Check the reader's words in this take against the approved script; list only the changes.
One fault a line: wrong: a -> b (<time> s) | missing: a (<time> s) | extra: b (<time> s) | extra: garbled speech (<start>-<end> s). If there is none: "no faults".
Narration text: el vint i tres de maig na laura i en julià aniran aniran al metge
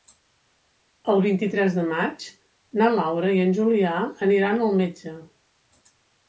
missing: aniran (4.6 s)